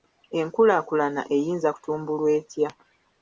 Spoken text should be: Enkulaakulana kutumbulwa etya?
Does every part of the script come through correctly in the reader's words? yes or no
no